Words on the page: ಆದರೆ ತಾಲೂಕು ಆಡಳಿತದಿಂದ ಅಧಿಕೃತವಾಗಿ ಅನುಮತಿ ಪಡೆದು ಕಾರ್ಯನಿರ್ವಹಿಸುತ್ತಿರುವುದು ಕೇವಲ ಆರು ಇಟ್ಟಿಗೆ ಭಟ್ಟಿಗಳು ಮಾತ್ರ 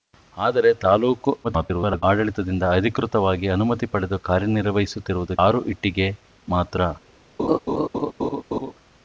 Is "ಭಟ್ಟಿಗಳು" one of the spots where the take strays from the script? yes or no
yes